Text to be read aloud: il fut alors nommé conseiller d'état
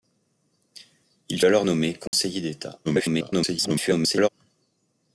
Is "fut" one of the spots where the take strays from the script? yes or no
yes